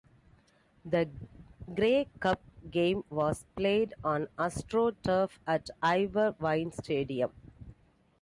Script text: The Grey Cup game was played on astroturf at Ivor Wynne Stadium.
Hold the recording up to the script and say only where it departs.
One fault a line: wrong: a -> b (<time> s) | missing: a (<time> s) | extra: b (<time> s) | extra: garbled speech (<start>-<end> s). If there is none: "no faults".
no faults